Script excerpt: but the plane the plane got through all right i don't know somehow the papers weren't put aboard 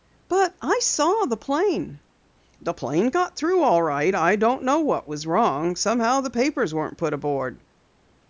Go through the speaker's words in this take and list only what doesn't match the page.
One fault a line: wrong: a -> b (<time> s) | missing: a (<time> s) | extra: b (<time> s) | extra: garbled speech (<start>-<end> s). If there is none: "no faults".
extra: i saw (0.6 s)
extra: what was wrong (4.8 s)